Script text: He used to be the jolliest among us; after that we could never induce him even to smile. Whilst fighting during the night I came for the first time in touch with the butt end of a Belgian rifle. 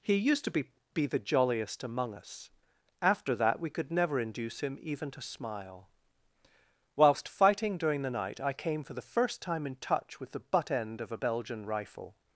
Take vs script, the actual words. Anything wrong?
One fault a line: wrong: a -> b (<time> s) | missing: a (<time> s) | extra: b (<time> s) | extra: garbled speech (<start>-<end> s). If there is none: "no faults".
extra: be (0.9 s)